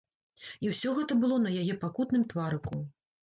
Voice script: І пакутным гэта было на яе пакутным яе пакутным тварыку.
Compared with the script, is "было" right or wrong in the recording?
right